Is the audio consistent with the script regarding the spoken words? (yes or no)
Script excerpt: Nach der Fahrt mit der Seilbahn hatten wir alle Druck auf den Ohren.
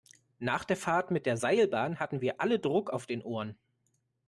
yes